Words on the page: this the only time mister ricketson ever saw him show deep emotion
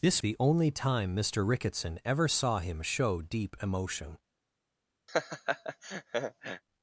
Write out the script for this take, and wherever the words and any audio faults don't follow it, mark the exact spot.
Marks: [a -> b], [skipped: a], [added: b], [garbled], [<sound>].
this the only time mister ricketson ever saw him show deep emotion [laugh]